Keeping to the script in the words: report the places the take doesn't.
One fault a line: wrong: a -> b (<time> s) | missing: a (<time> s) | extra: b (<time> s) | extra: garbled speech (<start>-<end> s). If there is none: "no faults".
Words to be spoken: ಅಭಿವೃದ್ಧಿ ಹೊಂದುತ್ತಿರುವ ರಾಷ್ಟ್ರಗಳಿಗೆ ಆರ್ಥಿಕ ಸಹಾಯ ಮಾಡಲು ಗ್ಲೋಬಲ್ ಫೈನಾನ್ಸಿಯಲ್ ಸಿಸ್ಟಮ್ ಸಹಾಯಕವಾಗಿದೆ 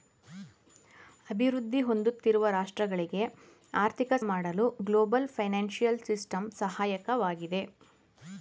missing: ಸಹಾಯ (4.1 s)